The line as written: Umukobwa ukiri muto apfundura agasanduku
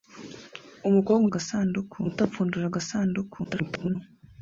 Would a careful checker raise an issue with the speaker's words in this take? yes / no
yes